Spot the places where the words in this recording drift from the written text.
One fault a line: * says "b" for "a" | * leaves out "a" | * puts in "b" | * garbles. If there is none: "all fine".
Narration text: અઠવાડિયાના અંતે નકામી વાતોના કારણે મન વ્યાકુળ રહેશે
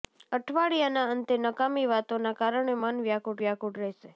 * puts in "વ્યાકુળ"